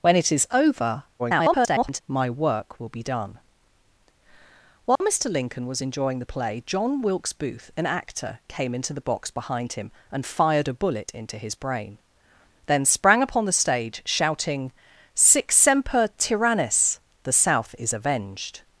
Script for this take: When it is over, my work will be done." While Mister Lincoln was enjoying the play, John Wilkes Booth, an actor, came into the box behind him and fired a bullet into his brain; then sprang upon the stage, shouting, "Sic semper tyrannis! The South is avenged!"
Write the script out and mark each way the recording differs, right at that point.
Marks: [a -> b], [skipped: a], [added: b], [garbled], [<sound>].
When it is over, [garbled] my work will be done." While [dropout] Mister Lincoln was enjoying the play, John Wilkes Booth, an actor, came into the box behind him and fired a bullet into his brain; then sprang upon the stage, shouting, "Sic semper tyrannis! The South is avenged!"